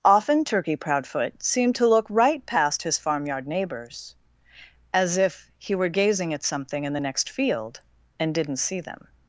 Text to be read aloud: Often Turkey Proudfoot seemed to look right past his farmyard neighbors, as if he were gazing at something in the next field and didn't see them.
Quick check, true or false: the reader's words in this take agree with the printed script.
true